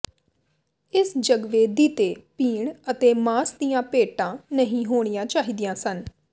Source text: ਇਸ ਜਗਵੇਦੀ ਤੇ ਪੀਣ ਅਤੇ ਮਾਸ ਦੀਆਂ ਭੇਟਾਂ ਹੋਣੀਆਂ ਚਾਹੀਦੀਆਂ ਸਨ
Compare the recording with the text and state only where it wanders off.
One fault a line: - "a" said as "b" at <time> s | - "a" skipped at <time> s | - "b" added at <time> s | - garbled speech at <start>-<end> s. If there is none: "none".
- "ਨਹੀਂ" added at 4.5 s